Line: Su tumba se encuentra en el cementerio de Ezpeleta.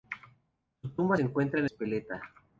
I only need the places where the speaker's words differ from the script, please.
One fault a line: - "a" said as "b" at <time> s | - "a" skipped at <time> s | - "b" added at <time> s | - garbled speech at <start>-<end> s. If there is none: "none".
- "se" skipped at 1.1 s
- "el cementerio de" skipped at 1.7 s